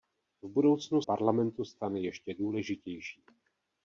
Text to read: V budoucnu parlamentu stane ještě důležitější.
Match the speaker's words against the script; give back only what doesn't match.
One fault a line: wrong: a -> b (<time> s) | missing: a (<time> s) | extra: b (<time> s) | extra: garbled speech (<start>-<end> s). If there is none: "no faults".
no faults